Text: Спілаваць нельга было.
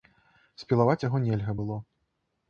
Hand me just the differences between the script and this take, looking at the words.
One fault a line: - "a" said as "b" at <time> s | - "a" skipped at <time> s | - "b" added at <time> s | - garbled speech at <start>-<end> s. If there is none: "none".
- "яго" added at 1.1 s